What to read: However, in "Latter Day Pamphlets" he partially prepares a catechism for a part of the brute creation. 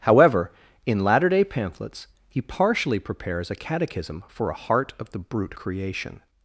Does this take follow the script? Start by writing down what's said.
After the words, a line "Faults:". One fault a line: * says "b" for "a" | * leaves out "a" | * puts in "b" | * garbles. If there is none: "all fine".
However, in "Latter Day Pamphlets" he partially prepares a catechism for a heart of the brute creation.
Faults:
* says "heart" for "part"